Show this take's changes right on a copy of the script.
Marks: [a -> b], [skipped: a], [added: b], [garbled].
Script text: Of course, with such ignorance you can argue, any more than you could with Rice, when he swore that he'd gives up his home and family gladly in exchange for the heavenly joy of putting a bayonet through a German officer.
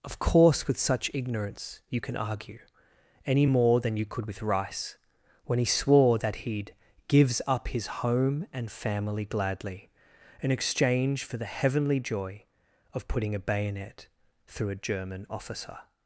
Of course, with such ignorance you can argue, any more than you could with Rice, when he swore that he'd gives up his home and family gladly in exchange for the heavenly joy of putting a bayonet through a German officer.